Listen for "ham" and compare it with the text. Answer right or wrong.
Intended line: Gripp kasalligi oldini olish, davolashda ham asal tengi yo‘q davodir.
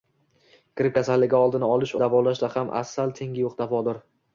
right